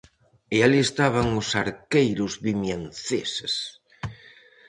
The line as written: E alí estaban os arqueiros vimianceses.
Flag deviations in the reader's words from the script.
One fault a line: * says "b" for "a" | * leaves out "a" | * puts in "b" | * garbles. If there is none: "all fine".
all fine